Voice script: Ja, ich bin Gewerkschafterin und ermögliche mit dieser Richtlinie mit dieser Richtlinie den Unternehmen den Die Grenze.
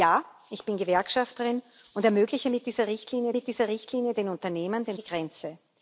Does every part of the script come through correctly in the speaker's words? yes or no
yes